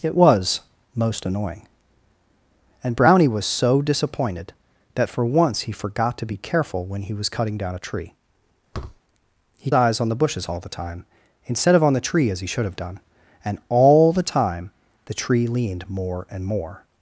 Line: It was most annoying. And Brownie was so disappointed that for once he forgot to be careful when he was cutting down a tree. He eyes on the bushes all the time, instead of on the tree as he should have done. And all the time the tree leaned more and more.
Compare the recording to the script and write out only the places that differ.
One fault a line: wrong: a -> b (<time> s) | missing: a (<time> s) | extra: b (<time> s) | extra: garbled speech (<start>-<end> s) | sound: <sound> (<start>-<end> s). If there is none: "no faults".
sound: thud (8.7-9.0 s)